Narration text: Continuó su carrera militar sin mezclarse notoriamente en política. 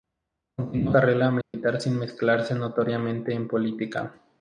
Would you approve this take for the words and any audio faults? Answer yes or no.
no